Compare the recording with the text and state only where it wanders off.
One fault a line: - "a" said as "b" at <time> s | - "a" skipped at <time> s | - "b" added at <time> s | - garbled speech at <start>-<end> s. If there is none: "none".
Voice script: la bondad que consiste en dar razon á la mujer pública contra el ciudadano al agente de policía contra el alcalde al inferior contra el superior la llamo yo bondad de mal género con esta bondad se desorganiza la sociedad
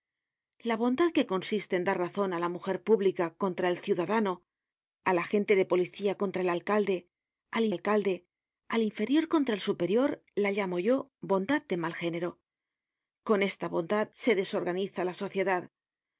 - "alcalde al" added at 7.7 s